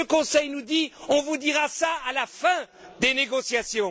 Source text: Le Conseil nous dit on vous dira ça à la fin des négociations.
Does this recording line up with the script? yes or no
yes